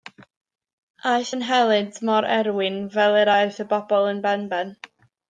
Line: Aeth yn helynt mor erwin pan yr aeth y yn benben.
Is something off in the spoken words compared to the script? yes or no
yes